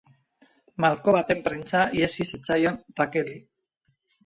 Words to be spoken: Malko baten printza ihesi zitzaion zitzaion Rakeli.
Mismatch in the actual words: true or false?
true